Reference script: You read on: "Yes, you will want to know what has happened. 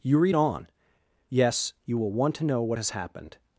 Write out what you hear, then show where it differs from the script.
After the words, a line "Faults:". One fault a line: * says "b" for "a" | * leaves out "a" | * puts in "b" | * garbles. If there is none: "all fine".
You read on: "Yes, you will want to know what has happened.
Faults:
all fine